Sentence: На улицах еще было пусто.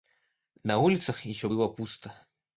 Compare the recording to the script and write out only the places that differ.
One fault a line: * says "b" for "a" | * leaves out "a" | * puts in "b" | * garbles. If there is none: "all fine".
all fine